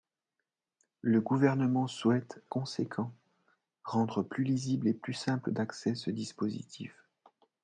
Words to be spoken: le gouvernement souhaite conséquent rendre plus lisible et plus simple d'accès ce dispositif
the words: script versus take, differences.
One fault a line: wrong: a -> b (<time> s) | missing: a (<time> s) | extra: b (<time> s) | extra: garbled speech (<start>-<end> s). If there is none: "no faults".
no faults